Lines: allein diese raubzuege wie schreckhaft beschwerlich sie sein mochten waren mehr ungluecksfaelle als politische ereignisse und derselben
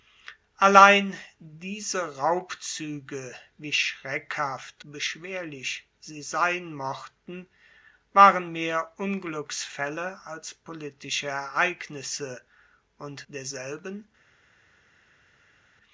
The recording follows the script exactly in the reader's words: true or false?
true